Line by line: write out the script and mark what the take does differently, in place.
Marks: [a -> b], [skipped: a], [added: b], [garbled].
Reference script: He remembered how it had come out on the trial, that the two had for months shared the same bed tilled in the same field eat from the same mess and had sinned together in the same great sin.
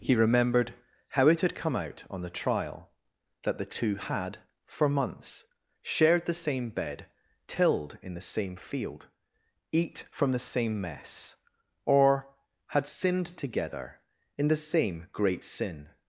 He remembered how it had come out on the trial, that the two had for months shared the same bed tilled in the same field eat from the same mess [and -> or] had sinned together in the same great sin.